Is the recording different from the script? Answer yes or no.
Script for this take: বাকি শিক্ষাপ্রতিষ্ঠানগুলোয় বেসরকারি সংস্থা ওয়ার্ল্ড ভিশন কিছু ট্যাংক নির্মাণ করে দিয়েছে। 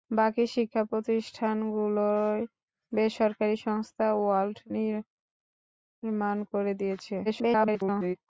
yes